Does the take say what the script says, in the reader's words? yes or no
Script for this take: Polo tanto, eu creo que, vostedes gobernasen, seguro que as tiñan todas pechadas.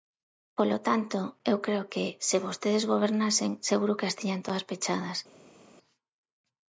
no